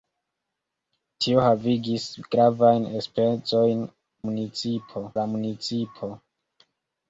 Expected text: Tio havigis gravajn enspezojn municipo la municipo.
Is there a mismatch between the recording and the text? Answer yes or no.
no